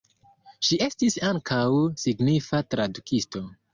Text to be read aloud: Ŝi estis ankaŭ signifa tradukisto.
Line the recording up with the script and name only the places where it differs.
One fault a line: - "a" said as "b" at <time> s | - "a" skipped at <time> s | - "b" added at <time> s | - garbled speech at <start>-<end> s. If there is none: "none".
none